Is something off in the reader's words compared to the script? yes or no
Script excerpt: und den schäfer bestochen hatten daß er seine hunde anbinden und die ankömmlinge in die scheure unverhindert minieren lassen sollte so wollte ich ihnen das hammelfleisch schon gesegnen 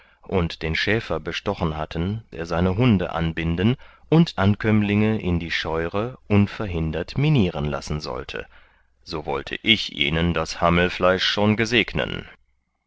yes